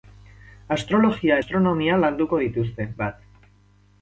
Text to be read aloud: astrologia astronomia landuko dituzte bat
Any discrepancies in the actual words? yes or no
no